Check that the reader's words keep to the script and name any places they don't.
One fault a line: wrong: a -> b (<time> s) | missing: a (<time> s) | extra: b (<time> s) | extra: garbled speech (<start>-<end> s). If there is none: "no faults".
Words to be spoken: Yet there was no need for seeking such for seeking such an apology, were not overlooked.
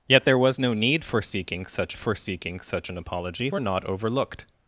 no faults